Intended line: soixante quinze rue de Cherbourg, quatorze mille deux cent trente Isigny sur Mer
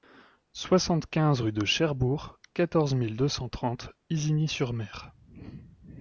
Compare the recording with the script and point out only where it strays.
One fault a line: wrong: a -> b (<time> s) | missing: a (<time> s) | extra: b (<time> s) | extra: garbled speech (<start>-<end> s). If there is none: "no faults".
no faults